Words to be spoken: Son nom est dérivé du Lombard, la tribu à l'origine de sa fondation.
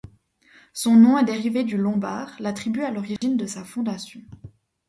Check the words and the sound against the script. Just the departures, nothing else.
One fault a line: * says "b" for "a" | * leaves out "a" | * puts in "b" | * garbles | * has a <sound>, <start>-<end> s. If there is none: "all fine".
* has a dropout, 3.2-3.2 s